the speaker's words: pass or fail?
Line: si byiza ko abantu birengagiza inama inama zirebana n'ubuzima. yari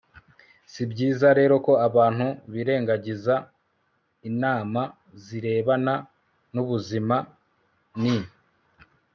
fail